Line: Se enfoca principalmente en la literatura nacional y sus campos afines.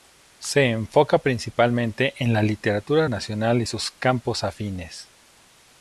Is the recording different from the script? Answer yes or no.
no